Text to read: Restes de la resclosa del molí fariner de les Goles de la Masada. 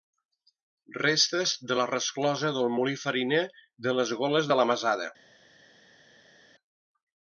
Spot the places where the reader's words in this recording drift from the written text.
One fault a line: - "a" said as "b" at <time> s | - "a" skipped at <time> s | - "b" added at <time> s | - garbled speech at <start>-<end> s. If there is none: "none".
none